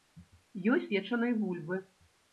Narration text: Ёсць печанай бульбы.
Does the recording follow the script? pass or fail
pass